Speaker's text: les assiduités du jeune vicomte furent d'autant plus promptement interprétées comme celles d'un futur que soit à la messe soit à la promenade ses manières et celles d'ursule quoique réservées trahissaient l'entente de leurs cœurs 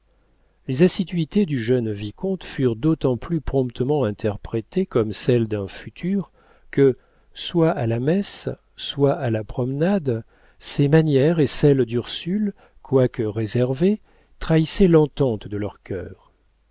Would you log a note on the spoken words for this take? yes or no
no